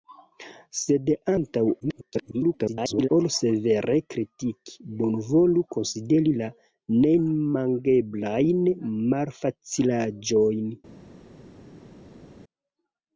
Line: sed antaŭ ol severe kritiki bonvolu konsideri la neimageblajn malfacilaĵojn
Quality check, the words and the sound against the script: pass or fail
fail